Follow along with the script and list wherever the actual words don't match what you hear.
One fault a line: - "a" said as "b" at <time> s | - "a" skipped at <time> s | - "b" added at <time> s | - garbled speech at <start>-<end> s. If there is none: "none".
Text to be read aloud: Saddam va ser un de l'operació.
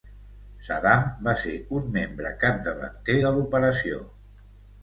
- "membre capdavanter" added at 2.0 s